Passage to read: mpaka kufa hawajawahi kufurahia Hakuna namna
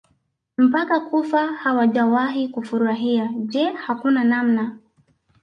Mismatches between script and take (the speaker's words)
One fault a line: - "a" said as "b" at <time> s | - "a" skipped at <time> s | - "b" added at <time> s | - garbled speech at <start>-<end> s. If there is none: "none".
- "Je" added at 3.4 s